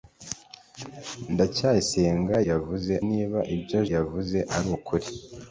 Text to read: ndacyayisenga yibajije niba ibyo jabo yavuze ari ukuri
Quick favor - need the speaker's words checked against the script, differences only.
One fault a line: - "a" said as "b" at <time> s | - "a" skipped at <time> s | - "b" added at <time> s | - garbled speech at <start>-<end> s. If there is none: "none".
- "yibajije" said as "yavuze" at 2.5 s
- "jabo" skipped at 3.8 s